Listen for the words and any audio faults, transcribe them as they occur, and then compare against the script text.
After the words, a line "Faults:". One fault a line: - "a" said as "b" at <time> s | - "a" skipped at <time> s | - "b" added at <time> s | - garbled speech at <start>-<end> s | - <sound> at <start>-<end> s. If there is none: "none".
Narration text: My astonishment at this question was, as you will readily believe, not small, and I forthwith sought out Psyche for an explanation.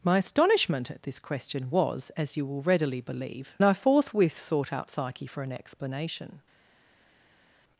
My astonishment at this question was, as you will readily believe, I forthwith sought out Psyche for an explanation.
Faults:
- "not small and" skipped at 3.5 s